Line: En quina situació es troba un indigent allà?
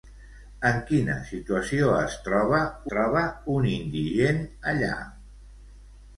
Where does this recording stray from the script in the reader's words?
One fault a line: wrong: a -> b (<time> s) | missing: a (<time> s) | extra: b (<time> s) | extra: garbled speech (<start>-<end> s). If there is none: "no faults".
extra: troba (2.9 s)